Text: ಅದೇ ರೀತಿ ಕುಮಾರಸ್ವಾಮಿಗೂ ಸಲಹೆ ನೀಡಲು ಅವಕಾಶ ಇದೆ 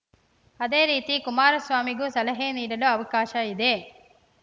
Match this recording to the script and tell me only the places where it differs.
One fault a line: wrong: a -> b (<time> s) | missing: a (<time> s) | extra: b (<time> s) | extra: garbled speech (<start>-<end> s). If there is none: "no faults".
no faults